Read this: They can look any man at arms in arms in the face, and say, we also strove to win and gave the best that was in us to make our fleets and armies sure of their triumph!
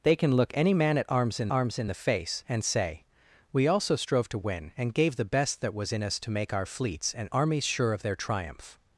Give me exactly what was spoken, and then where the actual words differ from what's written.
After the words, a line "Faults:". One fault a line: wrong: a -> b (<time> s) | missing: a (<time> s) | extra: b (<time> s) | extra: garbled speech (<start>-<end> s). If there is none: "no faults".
They can look any man at arms in arms in the face, and say, we also strove to win and gave the best that was in us to make our fleets and armies sure of their triumph!
Faults:
no faults